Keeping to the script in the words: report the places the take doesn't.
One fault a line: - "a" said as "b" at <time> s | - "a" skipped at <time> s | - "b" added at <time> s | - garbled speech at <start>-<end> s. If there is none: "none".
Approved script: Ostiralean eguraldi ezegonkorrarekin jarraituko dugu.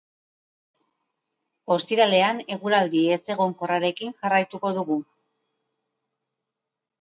none